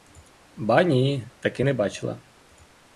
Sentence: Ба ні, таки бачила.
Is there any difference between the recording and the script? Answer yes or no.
yes